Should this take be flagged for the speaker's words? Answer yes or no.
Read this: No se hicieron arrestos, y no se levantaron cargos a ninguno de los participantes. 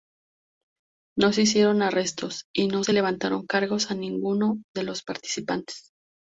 no